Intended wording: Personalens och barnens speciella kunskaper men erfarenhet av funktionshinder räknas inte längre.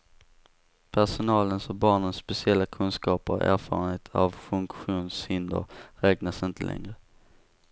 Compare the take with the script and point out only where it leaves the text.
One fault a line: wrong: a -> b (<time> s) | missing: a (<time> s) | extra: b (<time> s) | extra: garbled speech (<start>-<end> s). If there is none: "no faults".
wrong: men -> och (3.3 s)